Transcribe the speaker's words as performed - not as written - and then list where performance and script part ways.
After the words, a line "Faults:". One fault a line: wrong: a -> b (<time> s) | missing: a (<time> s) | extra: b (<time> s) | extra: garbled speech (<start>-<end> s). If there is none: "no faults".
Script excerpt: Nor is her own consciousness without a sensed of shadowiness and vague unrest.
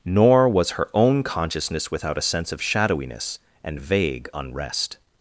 Nor was her own consciousness without a sense of shadowiness and vague unrest.
Faults:
wrong: is -> was (0.5 s)
wrong: sensed -> sense (2.2 s)